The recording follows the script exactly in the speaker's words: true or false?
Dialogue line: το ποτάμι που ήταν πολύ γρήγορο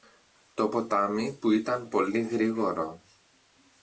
true